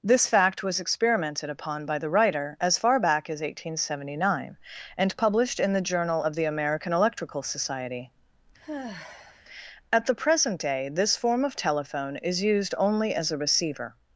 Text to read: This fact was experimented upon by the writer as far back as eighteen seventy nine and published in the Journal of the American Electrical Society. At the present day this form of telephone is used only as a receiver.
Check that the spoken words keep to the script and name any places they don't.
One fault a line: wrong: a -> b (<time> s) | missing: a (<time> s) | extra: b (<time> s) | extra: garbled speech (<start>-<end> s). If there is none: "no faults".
no faults